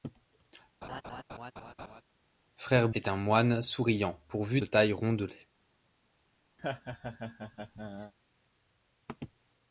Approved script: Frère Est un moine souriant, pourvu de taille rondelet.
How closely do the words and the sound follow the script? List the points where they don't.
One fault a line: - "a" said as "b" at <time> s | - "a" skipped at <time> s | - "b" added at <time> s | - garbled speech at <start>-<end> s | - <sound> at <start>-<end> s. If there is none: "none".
- laugh at 0.8-2.0 s
- laugh at 6.6-8.1 s